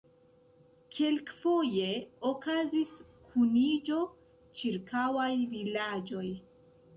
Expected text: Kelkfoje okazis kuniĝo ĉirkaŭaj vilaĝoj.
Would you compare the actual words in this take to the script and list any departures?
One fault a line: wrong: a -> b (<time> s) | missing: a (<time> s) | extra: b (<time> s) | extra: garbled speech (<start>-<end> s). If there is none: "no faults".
no faults